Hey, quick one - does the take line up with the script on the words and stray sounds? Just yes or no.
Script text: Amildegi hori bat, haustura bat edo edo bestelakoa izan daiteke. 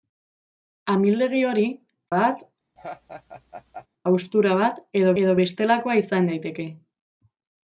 no